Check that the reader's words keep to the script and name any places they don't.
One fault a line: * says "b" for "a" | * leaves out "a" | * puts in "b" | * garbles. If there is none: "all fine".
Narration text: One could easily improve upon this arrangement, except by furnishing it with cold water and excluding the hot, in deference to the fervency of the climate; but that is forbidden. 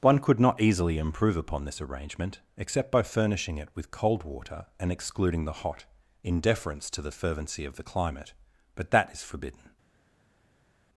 * puts in "not"